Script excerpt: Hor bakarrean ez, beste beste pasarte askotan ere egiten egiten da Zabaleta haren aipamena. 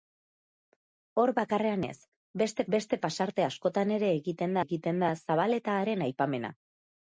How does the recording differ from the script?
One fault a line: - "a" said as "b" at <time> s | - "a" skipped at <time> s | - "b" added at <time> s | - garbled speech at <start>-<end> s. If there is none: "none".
none